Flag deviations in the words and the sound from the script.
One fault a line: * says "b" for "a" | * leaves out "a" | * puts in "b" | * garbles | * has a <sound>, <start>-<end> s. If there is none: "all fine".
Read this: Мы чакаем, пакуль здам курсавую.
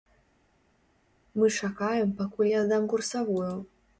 * puts in "я"